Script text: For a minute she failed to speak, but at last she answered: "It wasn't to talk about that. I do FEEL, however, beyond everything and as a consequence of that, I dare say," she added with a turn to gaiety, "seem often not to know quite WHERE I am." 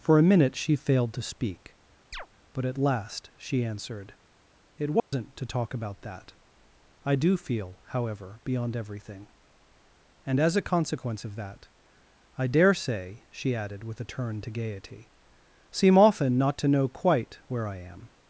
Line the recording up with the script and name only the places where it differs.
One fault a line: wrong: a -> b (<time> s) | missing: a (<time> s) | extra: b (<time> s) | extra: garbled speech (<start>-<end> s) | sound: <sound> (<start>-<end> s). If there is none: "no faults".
sound: chirp (2.1-2.3 s)
sound: dropout (5.0-5.1 s)